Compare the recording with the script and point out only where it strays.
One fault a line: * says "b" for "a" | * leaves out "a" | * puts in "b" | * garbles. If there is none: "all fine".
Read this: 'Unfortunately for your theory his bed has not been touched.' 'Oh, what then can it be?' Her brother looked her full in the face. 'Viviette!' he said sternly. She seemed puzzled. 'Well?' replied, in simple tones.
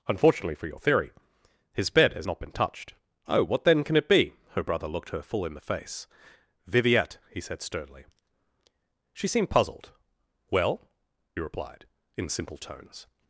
all fine